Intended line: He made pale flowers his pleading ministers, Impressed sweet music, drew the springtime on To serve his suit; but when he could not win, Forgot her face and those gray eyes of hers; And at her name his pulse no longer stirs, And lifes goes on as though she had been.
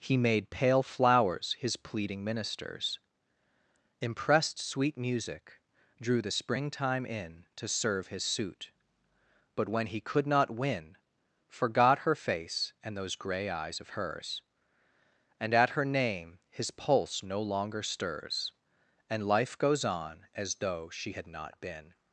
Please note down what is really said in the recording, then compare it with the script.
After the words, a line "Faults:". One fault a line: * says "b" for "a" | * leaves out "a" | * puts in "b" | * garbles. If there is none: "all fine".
He made pale flowers his pleading ministers, Impressed sweet music, drew the springtime in To serve his suit; but when he could not win, Forgot her face and those gray eyes of hers; And at her name his pulse no longer stirs, And life goes on as though she had not been.
Faults:
* says "in" for "on"
* says "life" for "lifes"
* puts in "not"